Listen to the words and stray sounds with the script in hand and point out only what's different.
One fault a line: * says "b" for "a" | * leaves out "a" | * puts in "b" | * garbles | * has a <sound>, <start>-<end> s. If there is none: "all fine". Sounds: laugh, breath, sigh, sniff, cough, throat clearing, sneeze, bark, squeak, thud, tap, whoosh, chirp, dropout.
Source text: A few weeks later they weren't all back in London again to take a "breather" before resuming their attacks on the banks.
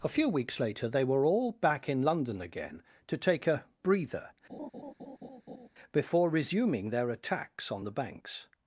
* says "were" for "weren't"
* has a laugh, 4.5-5.7 s